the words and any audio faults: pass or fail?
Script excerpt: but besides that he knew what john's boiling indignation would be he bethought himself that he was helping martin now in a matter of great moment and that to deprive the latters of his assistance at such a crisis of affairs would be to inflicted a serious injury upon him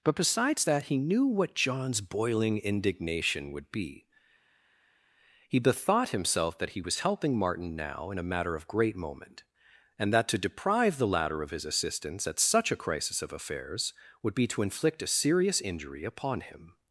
fail